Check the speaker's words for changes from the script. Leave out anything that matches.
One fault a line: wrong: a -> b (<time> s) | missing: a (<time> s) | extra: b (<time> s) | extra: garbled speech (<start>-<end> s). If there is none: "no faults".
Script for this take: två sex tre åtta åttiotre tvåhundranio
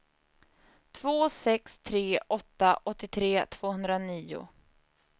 no faults